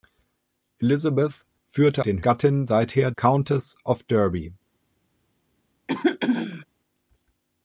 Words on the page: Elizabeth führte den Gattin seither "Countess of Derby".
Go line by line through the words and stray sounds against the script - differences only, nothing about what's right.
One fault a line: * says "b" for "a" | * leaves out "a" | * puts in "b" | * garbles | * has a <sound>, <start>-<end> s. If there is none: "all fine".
* has a throat clearing, 5.9-6.7 s